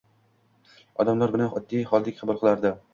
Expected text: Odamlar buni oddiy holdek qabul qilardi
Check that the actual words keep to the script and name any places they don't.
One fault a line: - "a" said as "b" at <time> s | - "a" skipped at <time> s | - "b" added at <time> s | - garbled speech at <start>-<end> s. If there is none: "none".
none